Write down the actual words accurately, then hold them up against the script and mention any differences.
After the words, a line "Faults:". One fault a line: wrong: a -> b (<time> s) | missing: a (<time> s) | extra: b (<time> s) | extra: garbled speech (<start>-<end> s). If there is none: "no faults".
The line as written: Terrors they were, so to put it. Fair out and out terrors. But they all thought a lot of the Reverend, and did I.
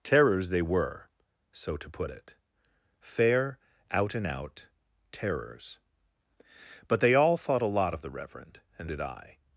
Terrors they were, so to put it. Fair out and out terrors. But they all thought a lot of the Reverend, and did I.
Faults:
no faults